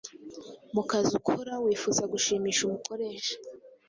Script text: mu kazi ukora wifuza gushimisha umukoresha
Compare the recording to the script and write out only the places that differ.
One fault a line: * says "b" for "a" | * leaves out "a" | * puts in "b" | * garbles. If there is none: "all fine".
all fine